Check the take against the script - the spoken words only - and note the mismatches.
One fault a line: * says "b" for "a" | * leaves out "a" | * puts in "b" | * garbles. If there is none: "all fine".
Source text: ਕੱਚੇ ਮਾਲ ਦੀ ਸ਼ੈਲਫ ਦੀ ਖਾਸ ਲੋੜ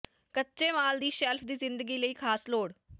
* puts in "ਜ਼ਿੰਦਗੀ ਲਈ"